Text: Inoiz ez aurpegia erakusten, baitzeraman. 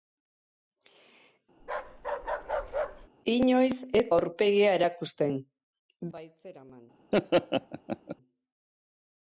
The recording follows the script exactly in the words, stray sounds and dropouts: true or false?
false